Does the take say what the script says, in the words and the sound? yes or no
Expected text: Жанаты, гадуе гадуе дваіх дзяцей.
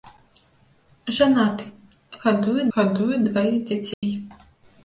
no